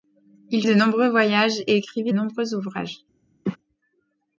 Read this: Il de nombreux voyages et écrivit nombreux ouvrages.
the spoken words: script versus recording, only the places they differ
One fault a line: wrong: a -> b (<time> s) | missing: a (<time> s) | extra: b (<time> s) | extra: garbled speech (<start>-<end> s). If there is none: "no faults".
no faults